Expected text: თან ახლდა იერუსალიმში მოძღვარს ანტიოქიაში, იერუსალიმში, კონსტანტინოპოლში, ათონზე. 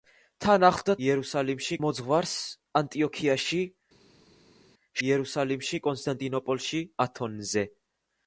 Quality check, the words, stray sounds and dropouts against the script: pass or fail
pass